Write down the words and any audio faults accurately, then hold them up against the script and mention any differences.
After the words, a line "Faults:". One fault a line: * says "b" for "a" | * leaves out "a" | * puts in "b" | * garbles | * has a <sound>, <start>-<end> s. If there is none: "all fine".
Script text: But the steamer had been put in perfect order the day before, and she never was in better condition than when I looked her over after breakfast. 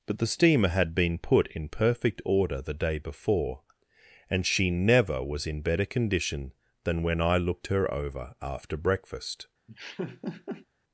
But the steamer had been put in perfect order the day before, and she never was in better condition than when I looked her over after breakfast.
Faults:
* has a laugh, 9.7-10.7 s